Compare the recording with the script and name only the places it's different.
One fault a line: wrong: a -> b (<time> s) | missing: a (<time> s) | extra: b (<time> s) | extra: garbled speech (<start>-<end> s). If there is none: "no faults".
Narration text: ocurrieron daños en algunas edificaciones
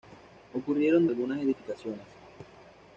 missing: daños en (1.1 s)